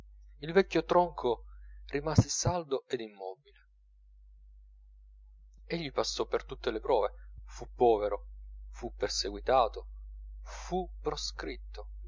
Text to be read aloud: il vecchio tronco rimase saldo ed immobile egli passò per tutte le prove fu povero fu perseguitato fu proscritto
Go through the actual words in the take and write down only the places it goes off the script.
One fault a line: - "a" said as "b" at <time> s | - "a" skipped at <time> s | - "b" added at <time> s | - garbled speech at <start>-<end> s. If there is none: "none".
none